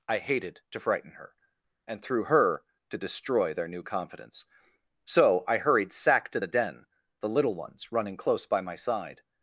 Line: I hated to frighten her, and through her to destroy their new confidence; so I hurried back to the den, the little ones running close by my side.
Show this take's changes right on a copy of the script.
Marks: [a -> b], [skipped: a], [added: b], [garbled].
I hated to frighten her, and through her to destroy their new confidence; so I hurried [back -> sack] to the den, the little ones running close by my side.